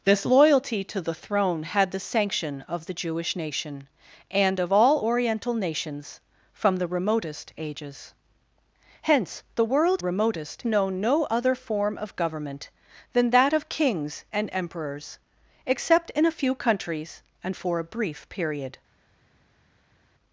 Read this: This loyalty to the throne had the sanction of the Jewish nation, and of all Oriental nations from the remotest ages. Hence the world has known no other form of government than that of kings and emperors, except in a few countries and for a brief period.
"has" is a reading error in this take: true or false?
true